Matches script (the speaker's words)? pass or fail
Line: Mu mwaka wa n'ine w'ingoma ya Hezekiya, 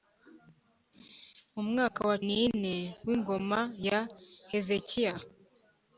pass